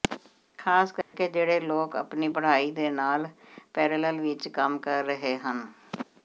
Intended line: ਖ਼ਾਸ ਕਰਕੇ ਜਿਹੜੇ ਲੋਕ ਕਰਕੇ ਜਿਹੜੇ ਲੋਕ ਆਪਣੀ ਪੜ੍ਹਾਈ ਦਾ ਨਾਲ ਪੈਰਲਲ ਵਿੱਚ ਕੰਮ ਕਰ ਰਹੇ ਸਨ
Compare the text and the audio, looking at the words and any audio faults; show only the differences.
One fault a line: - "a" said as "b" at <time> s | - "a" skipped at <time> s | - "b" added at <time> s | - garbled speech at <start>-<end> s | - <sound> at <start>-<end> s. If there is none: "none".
- dropout at 1.0-1.1 s
- "ਕਰਕੇ ਜਿਹੜੇ ਲੋਕ" skipped at 1.9 s
- "ਦਾ" said as "ਦੇ" at 2.7 s
- "ਸਨ" said as "ਹਨ" at 5.4 s